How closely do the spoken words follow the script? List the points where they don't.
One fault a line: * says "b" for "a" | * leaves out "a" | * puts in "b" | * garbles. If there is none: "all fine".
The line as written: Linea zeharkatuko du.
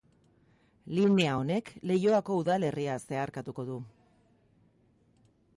* puts in "honek Leioako udalerria"